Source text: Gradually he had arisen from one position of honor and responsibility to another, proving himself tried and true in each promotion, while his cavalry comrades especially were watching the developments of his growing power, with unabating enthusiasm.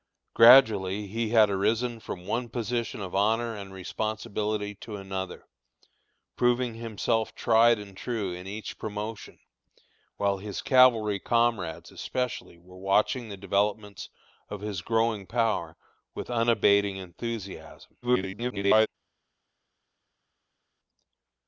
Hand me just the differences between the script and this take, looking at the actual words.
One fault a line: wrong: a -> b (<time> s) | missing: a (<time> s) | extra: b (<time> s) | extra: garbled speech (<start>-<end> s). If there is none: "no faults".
extra: garbled speech (18.0-18.9 s)